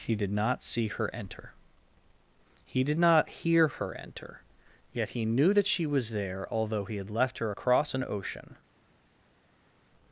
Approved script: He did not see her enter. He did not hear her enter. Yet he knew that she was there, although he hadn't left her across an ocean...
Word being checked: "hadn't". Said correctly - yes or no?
no